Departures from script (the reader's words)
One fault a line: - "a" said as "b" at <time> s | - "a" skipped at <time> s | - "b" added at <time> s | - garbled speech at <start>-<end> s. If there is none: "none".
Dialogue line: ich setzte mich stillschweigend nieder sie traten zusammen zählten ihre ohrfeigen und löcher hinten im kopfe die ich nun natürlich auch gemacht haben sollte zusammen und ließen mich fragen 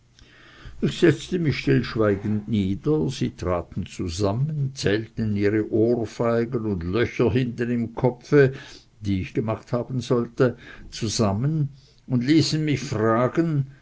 - "nun natürlich auch" skipped at 9.4 s